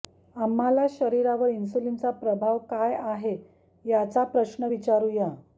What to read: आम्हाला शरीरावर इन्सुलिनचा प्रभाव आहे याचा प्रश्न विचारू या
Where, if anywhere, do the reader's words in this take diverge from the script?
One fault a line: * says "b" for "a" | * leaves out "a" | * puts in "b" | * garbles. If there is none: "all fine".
* puts in "काय"